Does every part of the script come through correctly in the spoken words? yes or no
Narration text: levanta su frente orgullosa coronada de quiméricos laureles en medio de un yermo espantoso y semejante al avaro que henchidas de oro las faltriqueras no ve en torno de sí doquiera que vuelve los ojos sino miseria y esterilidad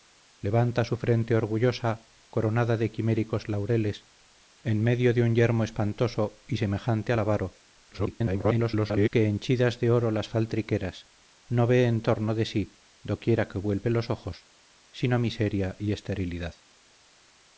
no